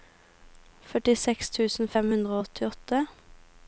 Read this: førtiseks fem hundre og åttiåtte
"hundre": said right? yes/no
yes